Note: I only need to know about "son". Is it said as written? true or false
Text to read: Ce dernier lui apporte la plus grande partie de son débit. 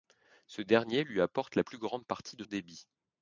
false